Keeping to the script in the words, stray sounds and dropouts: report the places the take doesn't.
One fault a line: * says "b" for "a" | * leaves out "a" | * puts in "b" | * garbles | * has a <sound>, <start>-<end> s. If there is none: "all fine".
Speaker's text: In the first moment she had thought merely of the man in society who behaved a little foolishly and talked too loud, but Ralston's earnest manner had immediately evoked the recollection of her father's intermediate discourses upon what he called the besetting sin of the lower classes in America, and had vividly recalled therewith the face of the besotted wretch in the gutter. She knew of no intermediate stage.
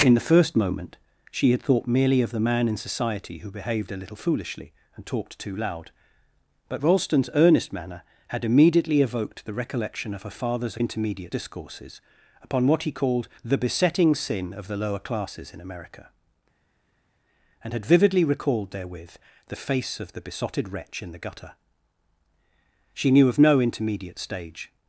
all fine